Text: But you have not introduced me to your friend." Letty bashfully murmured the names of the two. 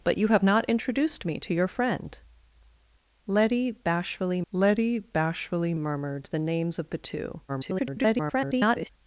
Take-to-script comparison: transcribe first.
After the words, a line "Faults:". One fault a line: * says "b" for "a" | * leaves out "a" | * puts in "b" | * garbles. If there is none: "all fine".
But you have not introduced me to your friend." Letty bashfully letty bashfully murmured the names of the two. [garbled]
Faults:
* puts in "letty bashfully"
* garbles